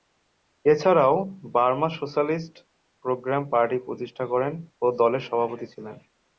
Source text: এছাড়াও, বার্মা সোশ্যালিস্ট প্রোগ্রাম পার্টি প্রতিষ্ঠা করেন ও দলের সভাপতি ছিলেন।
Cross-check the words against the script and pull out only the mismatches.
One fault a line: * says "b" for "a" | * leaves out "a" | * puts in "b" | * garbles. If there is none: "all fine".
all fine